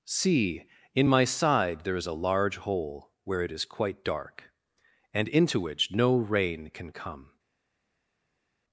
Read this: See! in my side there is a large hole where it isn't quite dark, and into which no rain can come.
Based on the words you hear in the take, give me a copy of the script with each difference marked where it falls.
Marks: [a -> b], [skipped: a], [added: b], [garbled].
See! in my side there is a large hole where it [isn't -> is] quite dark, and into which no rain can come.